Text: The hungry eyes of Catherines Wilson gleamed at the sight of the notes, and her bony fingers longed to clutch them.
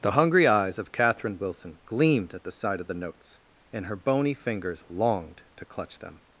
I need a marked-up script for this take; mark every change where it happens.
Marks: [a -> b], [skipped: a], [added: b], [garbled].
The hungry eyes of [Catherines -> Catherine] Wilson gleamed at the sight of the notes, and her bony fingers longed to clutch them.